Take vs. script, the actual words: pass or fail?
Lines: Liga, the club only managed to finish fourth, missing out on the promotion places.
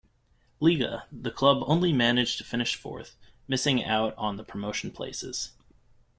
pass